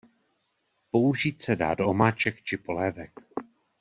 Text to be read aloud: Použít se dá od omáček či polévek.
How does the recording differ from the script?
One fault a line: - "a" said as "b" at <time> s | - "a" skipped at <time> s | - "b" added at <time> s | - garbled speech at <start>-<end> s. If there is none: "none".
- "od" said as "do" at 1.7 s